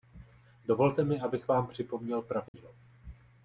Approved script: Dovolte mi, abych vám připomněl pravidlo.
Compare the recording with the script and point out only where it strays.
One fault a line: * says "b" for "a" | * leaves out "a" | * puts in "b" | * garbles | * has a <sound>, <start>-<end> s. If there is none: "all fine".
* has a dropout, 2.5-2.5 s